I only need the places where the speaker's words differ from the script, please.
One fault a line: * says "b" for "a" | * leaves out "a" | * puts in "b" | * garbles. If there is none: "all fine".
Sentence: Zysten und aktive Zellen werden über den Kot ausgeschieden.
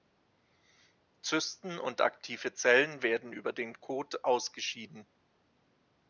all fine